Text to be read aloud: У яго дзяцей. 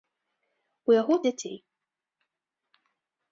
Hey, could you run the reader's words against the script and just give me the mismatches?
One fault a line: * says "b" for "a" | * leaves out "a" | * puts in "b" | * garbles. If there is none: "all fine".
all fine